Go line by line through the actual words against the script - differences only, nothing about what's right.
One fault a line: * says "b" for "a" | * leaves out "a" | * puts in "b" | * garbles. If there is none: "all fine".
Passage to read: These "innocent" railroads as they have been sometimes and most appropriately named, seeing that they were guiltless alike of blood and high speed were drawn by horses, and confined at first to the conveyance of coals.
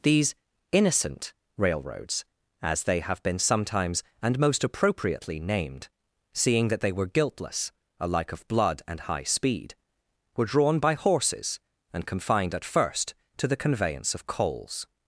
all fine